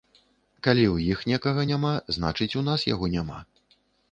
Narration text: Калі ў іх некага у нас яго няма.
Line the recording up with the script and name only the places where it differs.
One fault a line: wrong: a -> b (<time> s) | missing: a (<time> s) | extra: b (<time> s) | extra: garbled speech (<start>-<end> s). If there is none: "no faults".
extra: няма значыць (1.7 s)